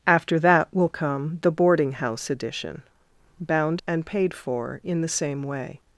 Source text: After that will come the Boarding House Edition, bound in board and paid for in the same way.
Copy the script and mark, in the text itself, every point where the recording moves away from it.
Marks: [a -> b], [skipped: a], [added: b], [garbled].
After that will come the Boarding House Edition, bound [skipped: in board] and paid for in the same way.